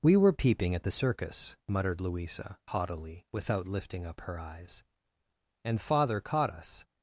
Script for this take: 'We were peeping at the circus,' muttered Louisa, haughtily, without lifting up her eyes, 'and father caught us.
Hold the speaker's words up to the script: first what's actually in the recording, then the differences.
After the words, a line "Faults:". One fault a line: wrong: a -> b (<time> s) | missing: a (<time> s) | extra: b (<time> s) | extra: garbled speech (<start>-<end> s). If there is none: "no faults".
'We were peeping at the circus,' muttered Louisa, haughtily, without lifting up her eyes, 'and father caught us.
Faults:
no faults